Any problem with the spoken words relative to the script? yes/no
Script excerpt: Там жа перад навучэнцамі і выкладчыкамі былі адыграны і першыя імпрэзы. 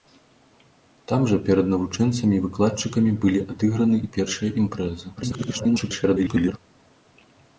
yes